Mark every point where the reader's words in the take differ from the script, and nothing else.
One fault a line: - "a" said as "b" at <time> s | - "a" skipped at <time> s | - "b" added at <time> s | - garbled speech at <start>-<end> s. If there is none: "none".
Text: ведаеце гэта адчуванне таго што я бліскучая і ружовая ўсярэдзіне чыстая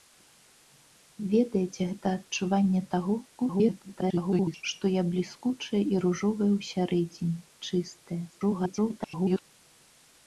- garbled speech at 3.4-4.6 s
- garbled speech at 8.3-9.4 s